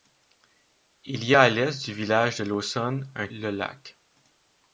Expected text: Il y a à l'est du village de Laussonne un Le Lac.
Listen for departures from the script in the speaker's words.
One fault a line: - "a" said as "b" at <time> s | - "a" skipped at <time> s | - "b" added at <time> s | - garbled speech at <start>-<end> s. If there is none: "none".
none